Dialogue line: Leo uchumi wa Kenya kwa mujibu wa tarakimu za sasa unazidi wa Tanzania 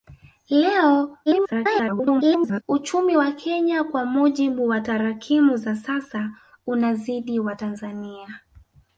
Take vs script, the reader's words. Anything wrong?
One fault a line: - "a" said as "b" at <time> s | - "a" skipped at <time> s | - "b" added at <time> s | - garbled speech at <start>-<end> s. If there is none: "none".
- garbled speech at 1.3-2.6 s